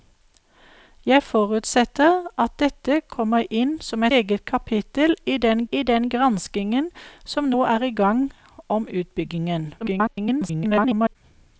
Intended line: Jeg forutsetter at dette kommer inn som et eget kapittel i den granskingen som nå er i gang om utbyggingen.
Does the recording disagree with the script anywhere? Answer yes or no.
yes